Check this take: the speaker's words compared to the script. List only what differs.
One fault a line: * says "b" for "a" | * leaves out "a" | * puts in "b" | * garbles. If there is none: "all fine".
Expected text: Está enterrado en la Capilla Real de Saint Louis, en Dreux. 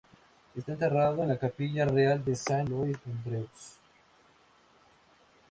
all fine